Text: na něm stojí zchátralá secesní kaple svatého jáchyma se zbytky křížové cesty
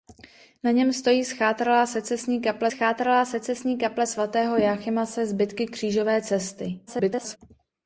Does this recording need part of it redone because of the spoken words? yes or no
yes